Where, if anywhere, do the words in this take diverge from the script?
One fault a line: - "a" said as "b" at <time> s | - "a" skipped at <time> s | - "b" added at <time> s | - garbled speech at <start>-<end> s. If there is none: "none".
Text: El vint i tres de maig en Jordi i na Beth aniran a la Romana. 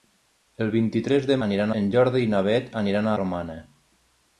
- "maig" said as "aniran" at 1.5 s
- "la" skipped at 3.1 s